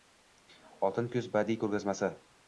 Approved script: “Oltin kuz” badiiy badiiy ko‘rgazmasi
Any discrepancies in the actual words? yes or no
yes